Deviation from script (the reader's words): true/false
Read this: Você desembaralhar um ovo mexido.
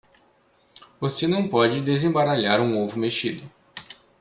true